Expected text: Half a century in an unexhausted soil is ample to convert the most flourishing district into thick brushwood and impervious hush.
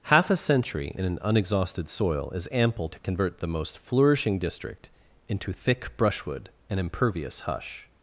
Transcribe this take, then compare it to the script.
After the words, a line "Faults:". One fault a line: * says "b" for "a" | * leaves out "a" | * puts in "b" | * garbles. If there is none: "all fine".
Half a century in an unexhausted soil is ample to convert the most flourishing district into thick brushwood and impervious hush.
Faults:
all fine